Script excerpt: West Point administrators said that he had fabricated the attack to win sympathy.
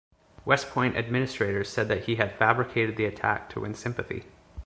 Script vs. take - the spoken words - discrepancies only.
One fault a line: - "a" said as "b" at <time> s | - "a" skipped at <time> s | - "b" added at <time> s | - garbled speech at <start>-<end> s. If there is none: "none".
none